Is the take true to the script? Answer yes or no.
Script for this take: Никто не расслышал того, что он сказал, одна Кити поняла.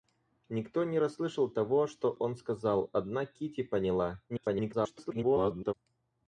no